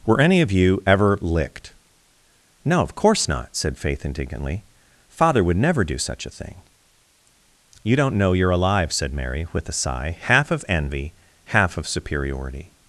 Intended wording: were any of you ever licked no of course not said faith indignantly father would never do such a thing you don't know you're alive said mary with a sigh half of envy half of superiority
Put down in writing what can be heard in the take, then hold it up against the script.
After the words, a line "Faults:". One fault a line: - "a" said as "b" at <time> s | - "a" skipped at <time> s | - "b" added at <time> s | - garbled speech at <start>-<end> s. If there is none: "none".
were any of you ever licked no of course not said faith indignantly father would never do such a thing you don't know you're alive said mary with a sigh half of envy half of superiority
Faults:
none